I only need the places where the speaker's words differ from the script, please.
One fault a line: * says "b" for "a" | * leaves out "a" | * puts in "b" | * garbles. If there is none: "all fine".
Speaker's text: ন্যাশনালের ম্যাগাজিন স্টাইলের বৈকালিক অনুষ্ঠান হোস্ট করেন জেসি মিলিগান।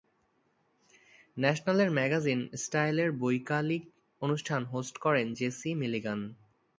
all fine